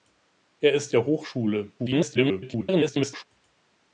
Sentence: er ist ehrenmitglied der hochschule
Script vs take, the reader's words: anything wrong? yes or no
yes